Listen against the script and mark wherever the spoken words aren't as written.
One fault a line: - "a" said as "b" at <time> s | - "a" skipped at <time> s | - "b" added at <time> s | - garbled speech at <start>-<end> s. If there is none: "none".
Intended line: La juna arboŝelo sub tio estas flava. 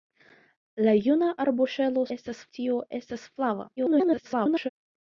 - "sub" said as "estas" at 2.2 s
- garbled speech at 3.8-4.7 s